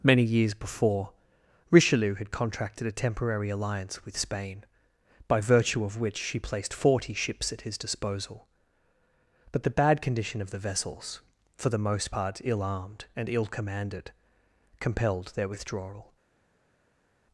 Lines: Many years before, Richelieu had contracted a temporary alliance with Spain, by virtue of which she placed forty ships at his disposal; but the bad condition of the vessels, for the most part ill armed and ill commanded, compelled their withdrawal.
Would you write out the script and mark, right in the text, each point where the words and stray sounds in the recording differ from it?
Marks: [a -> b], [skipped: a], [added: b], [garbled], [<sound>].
Many years before, Richelieu had contracted a temporary alliance with Spain, by virtue of which she placed forty ships at his disposal; but the bad condition of the vessels, for the most part ill armed and ill commanded, compelled their withdrawal.